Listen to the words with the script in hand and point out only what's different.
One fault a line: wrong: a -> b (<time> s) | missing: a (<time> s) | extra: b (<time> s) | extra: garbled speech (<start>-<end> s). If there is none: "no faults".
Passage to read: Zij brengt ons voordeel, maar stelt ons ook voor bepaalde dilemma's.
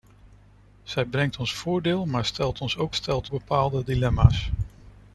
wrong: voor -> stelt (2.9 s)